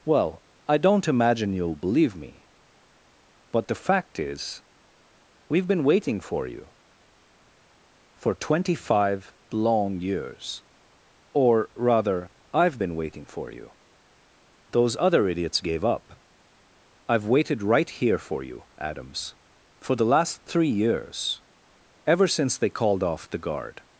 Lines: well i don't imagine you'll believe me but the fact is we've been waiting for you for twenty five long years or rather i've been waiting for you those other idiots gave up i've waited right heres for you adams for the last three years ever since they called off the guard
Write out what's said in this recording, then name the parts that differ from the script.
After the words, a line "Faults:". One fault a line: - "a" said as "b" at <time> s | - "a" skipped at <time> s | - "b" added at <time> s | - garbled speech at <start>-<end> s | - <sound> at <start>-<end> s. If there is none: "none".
well i don't imagine you'll believe me but the fact is we've been waiting for you for twenty five long years or rather i've been waiting for you those other idiots gave up i've waited right here for you adams for the last three years ever since they called off the guard
Faults:
- "heres" said as "here" at 17.9 s